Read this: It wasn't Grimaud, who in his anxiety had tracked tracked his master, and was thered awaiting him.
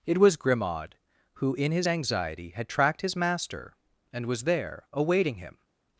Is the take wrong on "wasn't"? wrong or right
wrong